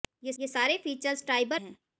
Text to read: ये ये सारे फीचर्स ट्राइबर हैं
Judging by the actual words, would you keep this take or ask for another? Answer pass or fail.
pass